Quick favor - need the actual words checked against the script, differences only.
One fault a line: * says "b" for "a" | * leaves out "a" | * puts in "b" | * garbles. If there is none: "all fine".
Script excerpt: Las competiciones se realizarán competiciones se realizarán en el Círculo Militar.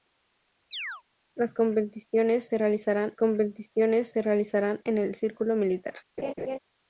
all fine